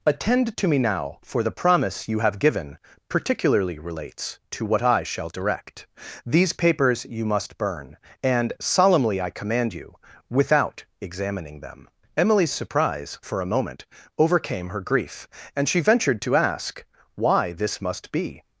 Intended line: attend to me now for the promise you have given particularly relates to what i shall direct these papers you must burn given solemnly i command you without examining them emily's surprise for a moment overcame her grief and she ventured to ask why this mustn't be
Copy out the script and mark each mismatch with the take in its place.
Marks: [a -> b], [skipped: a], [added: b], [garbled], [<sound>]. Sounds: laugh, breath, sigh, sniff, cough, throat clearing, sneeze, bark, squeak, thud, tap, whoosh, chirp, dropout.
attend to me now for the promise you have given particularly relates to what i shall direct these papers you must burn [given -> and] solemnly i command you without examining them emily's surprise for a moment overcame her grief and she ventured to ask why this [mustn't -> must] be